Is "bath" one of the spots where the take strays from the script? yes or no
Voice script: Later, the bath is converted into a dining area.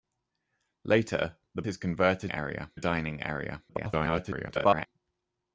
yes